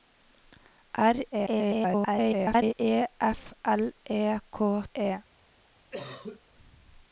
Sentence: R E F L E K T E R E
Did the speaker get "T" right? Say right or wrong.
wrong